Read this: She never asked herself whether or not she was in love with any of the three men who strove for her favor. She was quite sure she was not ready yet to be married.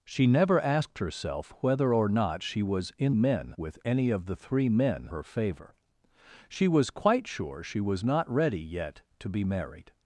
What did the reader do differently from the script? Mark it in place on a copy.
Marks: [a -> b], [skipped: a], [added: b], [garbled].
She never asked herself whether or not she was in [love -> men] with any of the three men [skipped: who strove for] her favor. She was quite sure she was not ready yet to be married.